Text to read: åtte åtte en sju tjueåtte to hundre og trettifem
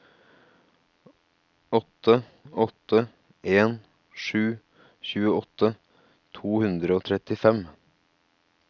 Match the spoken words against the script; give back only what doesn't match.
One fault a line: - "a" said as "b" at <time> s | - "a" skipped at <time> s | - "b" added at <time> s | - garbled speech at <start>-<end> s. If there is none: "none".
none